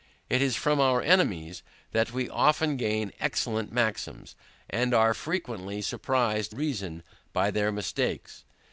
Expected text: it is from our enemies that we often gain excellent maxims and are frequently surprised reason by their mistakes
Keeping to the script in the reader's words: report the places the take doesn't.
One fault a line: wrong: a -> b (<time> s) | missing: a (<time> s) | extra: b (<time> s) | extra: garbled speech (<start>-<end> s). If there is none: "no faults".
no faults